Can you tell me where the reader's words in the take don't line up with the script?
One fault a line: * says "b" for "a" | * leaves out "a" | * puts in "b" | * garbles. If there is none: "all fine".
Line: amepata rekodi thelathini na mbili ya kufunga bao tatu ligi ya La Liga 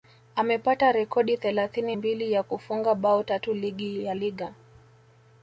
* leaves out "na"
* leaves out "La"